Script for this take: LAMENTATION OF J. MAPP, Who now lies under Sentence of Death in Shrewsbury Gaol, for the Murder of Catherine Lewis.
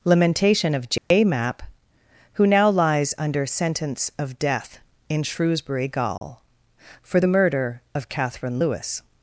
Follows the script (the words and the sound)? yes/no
no